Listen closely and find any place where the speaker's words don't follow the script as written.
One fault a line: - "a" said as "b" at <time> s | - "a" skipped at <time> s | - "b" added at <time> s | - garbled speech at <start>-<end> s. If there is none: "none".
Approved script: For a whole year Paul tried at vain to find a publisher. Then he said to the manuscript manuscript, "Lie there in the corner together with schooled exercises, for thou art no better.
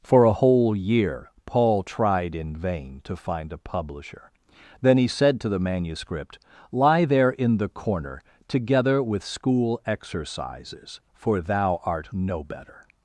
- "at" said as "in" at 2.3 s
- "manuscript" skipped at 6.4 s
- "schooled" said as "school" at 9.2 s